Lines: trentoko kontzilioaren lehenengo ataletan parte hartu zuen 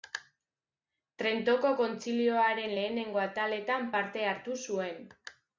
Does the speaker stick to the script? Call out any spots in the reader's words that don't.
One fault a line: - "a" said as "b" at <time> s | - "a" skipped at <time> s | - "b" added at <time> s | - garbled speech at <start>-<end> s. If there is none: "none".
none